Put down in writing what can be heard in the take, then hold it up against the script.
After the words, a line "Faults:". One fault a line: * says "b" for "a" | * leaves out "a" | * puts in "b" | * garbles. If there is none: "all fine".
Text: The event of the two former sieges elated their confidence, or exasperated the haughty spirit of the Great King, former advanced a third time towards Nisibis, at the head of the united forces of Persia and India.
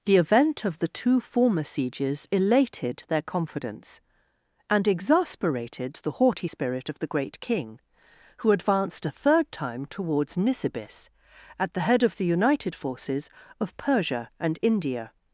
The event of the two former sieges elated their confidence, and exasperated the haughty spirit of the Great King, who advanced a third time towards Nisibis, at the head of the united forces of Persia and India.
Faults:
* says "and" for "or"
* says "who" for "former"